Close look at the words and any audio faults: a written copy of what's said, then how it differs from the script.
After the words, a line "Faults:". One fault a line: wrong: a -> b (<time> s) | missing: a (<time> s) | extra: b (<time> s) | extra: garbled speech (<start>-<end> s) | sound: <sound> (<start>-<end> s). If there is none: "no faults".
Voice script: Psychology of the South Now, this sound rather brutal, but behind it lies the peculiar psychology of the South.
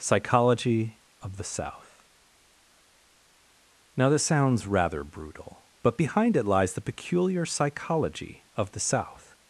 Psychology of the South Now, this sounds rather brutal, but behind it lies the peculiar psychology of the South.
Faults:
wrong: sound -> sounds (4.2 s)